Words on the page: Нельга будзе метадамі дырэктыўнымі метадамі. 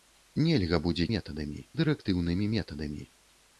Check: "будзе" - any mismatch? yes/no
no